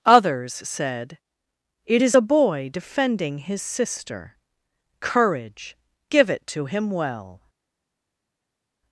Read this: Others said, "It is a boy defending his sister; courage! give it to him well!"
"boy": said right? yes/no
yes